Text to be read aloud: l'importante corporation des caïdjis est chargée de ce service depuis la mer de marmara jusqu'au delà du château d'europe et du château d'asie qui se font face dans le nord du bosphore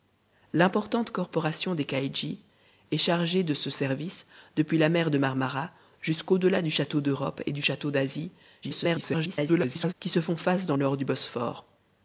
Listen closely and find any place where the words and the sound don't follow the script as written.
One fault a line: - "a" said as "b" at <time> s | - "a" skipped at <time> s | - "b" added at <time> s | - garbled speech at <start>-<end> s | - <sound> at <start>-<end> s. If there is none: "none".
- garbled speech at 8.6-9.9 s
- "le" skipped at 10.7 s